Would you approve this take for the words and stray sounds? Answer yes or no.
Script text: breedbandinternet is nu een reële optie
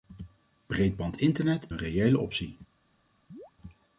no